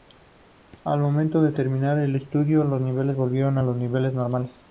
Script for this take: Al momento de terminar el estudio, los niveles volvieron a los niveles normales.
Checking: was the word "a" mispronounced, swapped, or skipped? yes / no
no